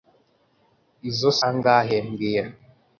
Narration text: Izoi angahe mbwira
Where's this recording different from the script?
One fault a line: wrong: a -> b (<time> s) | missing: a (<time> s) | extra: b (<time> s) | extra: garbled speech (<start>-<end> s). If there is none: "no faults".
no faults